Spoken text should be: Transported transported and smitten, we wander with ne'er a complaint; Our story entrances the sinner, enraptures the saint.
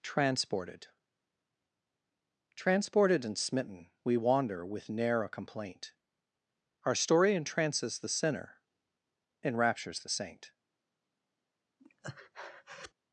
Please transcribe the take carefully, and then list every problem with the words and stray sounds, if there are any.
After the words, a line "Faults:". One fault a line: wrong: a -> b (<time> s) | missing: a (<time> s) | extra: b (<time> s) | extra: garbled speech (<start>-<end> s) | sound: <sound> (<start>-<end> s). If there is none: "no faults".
Transported transported and smitten, we wander with ne'er a complaint; Our story entrances the sinner, enraptures the saint.
Faults:
sound: breath (11.8-12.9 s)